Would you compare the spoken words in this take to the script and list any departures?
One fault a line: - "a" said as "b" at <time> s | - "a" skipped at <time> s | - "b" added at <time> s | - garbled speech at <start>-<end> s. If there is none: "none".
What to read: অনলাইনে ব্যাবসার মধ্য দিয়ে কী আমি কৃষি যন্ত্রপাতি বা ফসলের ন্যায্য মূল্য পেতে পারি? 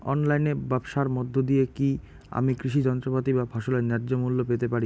none